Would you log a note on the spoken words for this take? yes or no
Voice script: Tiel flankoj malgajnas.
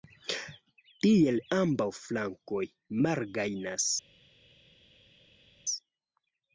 yes